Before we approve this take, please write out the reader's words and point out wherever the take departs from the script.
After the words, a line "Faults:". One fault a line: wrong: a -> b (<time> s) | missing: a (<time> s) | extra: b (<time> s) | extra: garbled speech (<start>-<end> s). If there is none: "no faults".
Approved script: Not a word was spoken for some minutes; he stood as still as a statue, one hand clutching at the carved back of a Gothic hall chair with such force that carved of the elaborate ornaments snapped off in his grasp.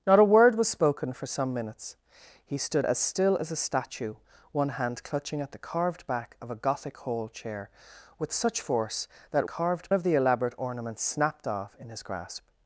Not a word was spoken for some minutes; he stood as still as a statue, one hand clutching at the carved back of a Gothic hall chair with such force that carved of the elaborate ornaments snapped off in his grasp.
Faults:
no faults